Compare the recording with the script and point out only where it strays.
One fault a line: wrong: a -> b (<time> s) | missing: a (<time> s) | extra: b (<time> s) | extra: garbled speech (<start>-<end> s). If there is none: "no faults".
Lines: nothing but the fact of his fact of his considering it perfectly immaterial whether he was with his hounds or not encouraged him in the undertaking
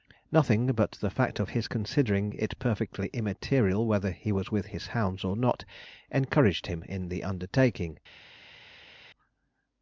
missing: fact of his (1.7 s)